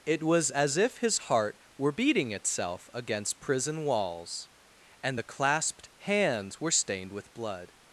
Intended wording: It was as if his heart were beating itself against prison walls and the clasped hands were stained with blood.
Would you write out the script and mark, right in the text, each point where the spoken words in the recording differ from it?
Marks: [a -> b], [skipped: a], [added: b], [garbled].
It was as if his heart were beating itself against prison walls and the clasped hands were stained with blood.